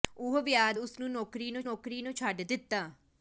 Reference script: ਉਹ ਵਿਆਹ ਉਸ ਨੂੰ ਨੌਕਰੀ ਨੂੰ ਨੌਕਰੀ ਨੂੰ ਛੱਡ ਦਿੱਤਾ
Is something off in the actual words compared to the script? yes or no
no